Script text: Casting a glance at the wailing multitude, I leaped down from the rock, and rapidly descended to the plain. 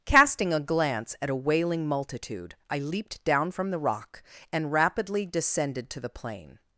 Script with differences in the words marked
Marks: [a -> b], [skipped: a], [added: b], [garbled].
Casting a glance at [the -> a] wailing multitude, I leaped down from the rock, and rapidly descended to the plain.